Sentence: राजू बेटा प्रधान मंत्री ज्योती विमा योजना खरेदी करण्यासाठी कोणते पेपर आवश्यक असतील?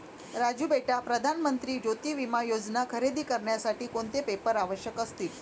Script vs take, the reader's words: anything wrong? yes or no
no